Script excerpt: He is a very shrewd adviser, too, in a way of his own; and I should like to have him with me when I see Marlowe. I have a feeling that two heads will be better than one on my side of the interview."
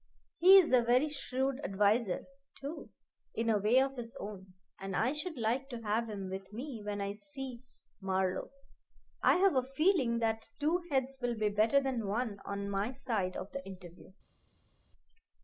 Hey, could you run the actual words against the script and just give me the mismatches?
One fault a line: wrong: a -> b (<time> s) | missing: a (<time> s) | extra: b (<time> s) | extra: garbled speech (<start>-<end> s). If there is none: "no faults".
no faults